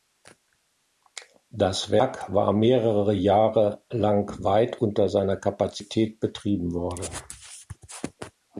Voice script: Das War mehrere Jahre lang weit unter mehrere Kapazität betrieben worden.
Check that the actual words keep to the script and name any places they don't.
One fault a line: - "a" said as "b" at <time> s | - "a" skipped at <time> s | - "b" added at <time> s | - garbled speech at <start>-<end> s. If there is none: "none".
- "Werk" added at 1.9 s
- "mehrere" said as "seiner" at 5.1 s